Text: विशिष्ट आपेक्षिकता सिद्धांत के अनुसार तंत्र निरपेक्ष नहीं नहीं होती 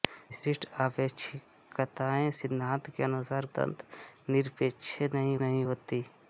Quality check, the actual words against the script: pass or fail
pass